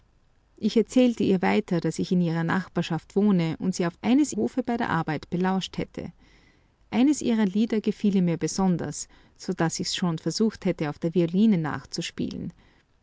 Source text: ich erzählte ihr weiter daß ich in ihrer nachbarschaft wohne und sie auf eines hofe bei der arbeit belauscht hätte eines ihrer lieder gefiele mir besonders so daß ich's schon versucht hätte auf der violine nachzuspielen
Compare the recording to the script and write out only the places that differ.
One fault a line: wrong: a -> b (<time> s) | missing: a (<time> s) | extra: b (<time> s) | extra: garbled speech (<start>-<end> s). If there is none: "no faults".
no faults